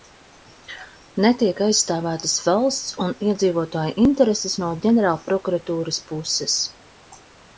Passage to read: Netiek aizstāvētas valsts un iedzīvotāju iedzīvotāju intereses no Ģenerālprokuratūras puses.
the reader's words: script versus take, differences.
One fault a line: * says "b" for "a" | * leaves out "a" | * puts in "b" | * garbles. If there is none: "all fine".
* leaves out "iedzīvotāju"